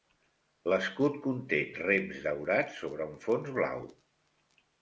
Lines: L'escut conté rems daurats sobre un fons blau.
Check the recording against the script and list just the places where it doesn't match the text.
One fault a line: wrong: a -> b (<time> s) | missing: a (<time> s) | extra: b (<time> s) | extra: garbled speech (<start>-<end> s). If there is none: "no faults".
no faults